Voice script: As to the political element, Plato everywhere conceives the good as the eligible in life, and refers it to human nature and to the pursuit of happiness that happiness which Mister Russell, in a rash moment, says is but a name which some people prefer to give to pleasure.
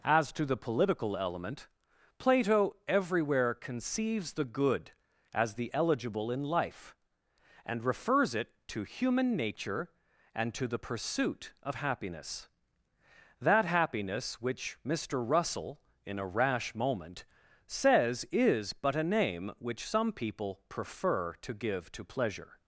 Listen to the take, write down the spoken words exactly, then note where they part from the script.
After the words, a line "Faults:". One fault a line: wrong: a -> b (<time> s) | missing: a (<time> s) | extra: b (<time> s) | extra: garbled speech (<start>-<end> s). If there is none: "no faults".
As to the political element, Plato everywhere conceives the good as the eligible in life, and refers it to human nature and to the pursuit of happiness that happiness which Mister Russell, in a rash moment, says is but a name which some people prefer to give to pleasure.
Faults:
no faults